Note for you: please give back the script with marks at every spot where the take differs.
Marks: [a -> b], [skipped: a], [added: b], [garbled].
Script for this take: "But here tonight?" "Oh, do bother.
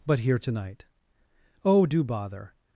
"But here tonight?" "Oh, do bother.